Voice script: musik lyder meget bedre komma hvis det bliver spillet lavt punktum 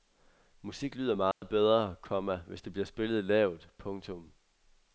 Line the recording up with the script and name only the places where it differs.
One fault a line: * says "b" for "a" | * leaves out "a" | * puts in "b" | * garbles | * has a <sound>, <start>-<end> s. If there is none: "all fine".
* has a dropout, 1.3-1.4 s